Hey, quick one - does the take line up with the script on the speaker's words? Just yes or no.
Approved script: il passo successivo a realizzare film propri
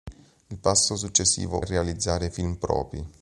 yes